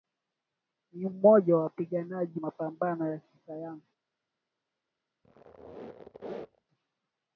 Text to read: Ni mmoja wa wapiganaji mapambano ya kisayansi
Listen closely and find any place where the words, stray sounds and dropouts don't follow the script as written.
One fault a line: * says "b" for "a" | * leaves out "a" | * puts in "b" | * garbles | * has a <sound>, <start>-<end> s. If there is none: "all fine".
* has a squeak, 5.2-6.7 s